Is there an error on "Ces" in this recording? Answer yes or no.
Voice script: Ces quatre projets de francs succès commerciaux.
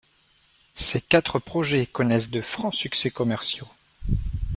no